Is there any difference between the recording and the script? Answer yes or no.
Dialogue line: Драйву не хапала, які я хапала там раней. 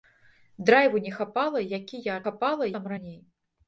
no